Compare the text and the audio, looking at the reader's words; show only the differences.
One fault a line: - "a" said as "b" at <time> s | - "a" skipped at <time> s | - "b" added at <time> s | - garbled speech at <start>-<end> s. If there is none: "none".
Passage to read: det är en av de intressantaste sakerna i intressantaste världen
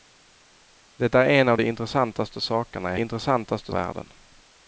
none